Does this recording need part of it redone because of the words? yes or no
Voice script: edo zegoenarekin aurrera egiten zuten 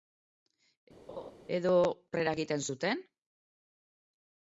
yes